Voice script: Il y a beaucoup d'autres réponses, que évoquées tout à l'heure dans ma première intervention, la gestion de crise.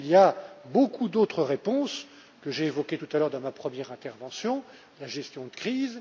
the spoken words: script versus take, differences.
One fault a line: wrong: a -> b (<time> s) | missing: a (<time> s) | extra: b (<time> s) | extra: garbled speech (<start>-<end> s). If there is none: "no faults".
extra: j'ai (2.5 s)